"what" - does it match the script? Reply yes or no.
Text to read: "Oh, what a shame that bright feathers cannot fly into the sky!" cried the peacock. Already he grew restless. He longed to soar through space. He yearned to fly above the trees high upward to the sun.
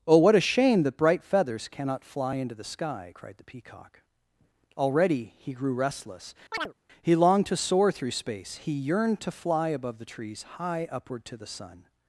yes